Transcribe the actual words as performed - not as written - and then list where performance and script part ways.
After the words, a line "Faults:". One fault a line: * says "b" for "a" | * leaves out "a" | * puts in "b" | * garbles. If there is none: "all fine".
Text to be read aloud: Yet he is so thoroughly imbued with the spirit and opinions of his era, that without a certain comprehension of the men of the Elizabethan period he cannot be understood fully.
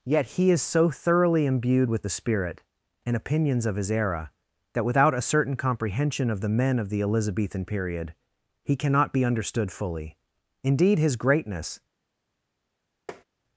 Yet he is so thoroughly imbued with the spirit and opinions of his era, that without a certain comprehension of the men of the Elizabethan period he cannot be understood fully. Indeed, his greatness
Faults:
* puts in "Indeed his greatness"